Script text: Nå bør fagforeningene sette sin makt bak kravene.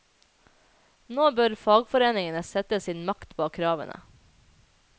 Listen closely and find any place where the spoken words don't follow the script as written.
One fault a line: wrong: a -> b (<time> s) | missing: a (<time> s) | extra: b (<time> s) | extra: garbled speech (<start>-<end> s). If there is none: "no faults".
no faults